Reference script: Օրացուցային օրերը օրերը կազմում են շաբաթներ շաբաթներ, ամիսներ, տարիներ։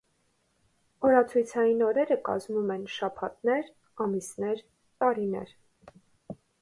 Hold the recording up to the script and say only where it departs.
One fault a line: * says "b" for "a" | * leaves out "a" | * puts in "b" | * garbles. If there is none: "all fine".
* leaves out "օրերը"
* leaves out "շաբաթներ"